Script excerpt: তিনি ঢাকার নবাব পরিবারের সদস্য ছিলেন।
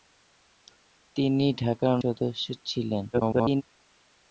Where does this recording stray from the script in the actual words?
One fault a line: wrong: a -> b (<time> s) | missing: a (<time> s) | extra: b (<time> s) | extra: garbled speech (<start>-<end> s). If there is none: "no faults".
missing: নবাব পরিবারের (1.9 s)
extra: garbled speech (3.1-3.6 s)